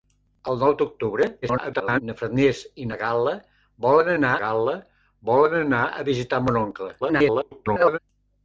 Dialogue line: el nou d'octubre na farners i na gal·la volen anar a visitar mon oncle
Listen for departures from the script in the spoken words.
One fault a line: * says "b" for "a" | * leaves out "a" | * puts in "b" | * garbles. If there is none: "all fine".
* garbles
* puts in "gal·la volen anar"
* garbles